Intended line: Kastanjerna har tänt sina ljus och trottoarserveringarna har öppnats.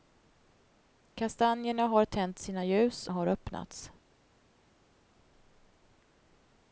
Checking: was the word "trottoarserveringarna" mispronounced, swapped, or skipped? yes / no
yes